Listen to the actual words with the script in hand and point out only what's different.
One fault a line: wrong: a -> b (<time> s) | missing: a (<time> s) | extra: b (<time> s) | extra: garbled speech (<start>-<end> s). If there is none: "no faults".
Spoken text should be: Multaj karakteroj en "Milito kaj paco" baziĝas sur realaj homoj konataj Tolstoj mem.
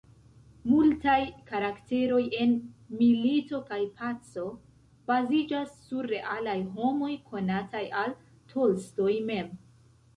extra: al (8.1 s)